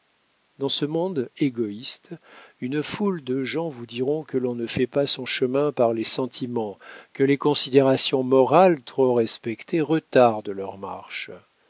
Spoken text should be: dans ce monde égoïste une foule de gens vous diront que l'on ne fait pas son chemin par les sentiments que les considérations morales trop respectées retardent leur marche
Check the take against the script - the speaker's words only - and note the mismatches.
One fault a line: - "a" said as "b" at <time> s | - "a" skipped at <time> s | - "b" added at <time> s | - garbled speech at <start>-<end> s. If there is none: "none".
none